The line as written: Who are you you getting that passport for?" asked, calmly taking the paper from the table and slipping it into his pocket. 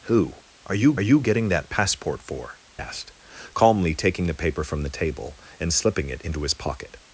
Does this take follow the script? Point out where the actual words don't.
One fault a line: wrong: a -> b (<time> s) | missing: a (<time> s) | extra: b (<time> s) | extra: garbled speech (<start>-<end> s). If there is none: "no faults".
no faults